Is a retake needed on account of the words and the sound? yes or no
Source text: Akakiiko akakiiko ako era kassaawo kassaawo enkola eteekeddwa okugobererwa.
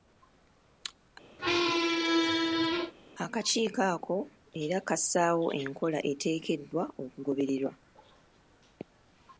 yes